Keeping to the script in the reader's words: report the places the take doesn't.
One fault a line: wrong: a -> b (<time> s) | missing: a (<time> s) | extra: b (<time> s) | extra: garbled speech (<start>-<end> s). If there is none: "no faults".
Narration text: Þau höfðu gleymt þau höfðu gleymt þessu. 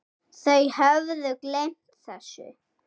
missing: þau höfðu gleymt (2.0 s)